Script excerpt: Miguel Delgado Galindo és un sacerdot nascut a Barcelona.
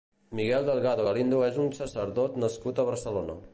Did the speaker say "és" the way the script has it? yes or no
yes